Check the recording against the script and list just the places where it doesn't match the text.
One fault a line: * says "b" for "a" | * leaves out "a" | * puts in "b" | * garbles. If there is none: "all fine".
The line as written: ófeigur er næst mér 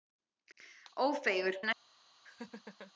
all fine